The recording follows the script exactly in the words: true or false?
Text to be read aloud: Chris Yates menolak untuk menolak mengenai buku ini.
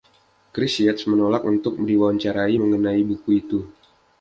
false